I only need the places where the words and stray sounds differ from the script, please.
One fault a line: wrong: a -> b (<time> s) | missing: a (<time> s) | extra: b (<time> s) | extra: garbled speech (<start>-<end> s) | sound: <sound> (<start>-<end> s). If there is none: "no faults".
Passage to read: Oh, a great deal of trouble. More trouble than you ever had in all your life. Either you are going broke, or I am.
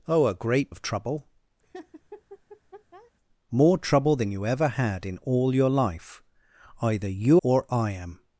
missing: deal (0.7 s)
sound: laugh (1.6-3.1 s)
missing: are going broke (7.4 s)